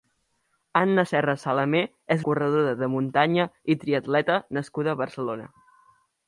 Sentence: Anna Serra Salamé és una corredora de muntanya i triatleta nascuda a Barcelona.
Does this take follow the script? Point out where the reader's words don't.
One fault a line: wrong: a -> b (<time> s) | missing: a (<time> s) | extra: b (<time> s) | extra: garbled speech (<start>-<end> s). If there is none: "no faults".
missing: una (2.2 s)